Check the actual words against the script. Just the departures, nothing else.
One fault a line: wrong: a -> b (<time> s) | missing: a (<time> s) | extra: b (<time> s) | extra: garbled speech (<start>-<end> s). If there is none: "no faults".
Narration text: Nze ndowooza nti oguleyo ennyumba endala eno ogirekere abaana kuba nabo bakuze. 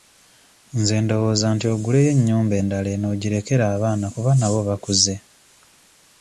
no faults